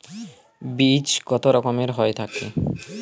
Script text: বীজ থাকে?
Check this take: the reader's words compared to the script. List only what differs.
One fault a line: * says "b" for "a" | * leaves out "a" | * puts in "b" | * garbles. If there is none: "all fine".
* puts in "কত রকমের হয়ে"